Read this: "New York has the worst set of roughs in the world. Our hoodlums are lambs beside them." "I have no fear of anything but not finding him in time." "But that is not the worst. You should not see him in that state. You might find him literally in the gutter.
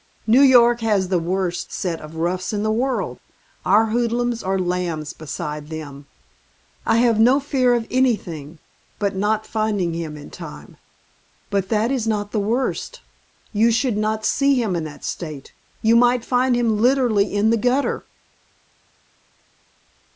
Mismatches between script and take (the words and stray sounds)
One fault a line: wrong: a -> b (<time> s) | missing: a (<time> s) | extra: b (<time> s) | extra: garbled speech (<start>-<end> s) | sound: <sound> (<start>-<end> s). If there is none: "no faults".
no faults